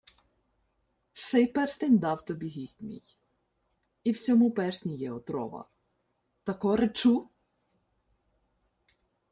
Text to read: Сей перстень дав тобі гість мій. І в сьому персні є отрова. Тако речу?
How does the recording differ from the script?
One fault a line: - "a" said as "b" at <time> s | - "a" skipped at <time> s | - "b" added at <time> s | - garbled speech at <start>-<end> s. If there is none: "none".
none